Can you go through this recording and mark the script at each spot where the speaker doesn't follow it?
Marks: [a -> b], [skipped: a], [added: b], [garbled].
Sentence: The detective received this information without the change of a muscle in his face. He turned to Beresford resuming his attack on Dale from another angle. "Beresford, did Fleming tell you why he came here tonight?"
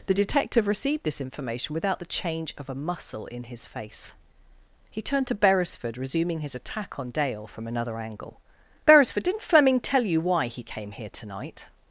The detective received this information without the change of a muscle in his face. He turned to Beresford resuming his attack on Dale from another angle. "Beresford, [did -> didn't] Fleming tell you why he came here tonight?"